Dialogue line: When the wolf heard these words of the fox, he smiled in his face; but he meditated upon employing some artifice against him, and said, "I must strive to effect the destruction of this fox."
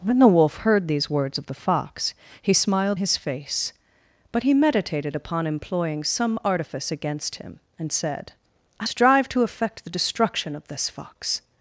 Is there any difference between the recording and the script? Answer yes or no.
yes